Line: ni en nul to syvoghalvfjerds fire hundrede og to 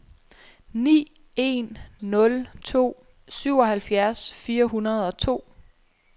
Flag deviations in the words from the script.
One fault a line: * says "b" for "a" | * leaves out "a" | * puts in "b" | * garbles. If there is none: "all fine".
all fine